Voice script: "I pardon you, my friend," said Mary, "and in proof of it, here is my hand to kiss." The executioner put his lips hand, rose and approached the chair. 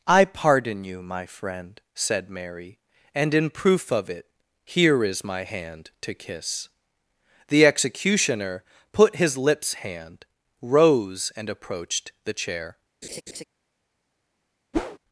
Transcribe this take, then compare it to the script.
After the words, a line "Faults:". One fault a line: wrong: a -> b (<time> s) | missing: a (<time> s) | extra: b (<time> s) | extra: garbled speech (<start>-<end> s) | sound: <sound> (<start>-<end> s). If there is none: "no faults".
"I pardon you, my friend," said Mary, "and in proof of it, here is my hand to kiss." The executioner put his lips hand, rose and approached the chair.
Faults:
sound: laugh (13.0-13.4 s)
sound: whoosh (14.7-15.0 s)